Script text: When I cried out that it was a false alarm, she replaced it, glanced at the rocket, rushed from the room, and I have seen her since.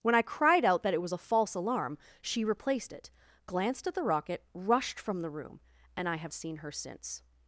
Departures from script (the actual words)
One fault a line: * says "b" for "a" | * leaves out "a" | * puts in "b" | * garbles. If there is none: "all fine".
all fine